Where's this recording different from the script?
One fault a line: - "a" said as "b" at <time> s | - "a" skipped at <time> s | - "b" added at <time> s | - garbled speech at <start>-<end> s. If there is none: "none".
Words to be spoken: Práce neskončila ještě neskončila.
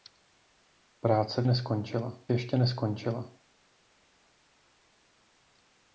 none